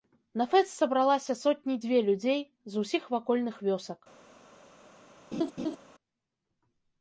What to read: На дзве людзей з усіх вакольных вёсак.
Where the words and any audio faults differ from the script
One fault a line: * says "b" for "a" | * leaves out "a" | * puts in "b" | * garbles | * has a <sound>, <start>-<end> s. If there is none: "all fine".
* puts in "фэст сабралася сотні"
* has a laugh, 5.3-5.8 s